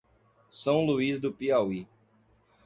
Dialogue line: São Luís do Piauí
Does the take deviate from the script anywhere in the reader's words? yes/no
no